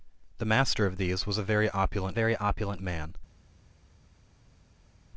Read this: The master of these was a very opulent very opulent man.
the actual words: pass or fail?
pass